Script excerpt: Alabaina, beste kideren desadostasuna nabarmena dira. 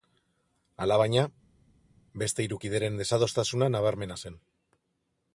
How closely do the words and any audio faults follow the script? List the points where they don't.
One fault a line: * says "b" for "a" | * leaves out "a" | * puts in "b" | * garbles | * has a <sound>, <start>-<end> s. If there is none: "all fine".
* puts in "hiru"
* says "zen" for "dira"